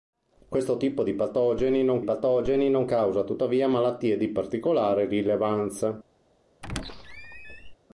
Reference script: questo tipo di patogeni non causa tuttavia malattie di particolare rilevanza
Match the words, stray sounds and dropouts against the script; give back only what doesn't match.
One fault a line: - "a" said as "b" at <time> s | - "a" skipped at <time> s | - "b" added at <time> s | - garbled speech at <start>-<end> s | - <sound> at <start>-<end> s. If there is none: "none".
- "patogeni non" added at 2.0 s
- squeak at 6.6-7.7 s